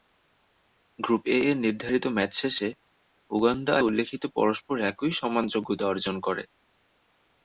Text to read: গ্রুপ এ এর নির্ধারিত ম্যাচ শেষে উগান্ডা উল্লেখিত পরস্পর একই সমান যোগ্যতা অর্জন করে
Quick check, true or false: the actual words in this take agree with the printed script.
true